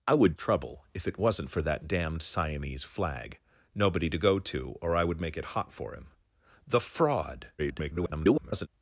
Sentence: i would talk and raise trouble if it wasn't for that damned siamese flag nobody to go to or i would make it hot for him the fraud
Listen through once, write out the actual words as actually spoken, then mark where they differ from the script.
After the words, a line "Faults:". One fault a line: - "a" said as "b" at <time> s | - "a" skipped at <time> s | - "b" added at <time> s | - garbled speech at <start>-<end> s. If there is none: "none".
i would trouble if it wasn't for that damned siamese flag nobody to go to or i would make it hot for him the fraud [garbled]
Faults:
- "talk and raise" skipped at 0.4 s
- garbled speech at 7.6-8.7 s